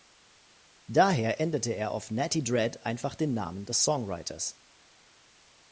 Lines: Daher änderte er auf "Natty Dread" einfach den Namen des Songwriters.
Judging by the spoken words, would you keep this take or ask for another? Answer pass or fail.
pass